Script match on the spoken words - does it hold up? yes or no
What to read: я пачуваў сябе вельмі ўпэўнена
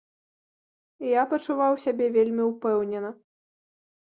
yes